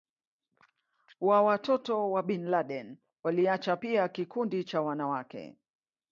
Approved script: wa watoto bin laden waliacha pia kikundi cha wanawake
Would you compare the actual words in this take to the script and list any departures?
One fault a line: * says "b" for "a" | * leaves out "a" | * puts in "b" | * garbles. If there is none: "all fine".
* puts in "wa"